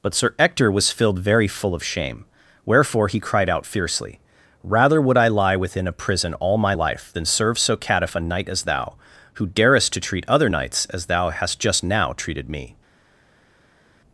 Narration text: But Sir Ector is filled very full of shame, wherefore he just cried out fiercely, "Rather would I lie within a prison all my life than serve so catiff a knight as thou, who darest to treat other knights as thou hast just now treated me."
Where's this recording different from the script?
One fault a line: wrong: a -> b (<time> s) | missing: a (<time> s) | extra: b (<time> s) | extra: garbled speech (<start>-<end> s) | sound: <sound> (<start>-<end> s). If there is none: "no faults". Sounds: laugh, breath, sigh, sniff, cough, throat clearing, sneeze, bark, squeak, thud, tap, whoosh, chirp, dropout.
wrong: is -> was (0.7 s)
missing: just (3.2 s)